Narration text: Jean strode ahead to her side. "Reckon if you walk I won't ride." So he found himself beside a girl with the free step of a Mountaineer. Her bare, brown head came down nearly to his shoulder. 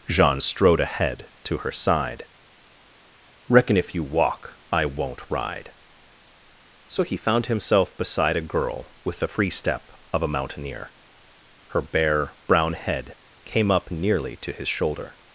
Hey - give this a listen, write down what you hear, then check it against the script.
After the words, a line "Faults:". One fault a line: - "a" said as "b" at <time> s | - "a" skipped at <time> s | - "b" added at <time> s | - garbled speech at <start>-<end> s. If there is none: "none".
Jean strode ahead to her side. "Reckon if you walk I won't ride." So he found himself beside a girl with the free step of a Mountaineer. Her bare, brown head came up nearly to his shoulder.
Faults:
- "down" said as "up" at 13.7 s